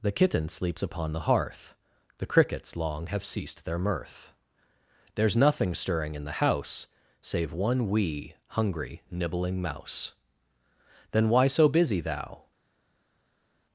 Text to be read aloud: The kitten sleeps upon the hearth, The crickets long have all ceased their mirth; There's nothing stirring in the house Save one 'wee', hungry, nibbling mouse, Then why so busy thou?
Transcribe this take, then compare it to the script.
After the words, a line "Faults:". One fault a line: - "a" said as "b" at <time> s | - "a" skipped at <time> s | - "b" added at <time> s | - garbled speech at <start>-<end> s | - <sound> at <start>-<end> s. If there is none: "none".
The kitten sleeps upon the hearth, The crickets long have ceased their mirth; There's nothing stirring in the house Save one 'wee', hungry, nibbling mouse, Then why so busy thou?
Faults:
- "all" skipped at 3.2 s